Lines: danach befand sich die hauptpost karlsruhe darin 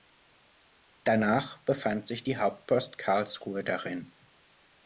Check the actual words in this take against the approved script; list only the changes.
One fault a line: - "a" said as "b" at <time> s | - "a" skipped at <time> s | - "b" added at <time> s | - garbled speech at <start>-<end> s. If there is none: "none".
none